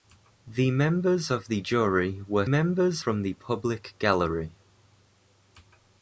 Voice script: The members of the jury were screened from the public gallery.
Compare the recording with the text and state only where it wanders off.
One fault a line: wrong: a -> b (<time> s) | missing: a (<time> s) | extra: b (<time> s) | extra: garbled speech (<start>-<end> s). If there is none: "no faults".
wrong: screened -> members (2.4 s)